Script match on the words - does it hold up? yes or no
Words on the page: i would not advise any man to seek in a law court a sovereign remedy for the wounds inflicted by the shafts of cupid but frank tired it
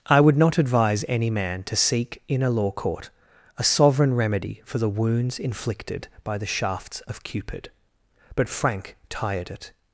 yes